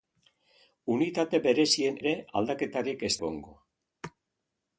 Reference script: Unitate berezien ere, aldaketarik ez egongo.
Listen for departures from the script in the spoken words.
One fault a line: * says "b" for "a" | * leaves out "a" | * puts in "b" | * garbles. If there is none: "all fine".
all fine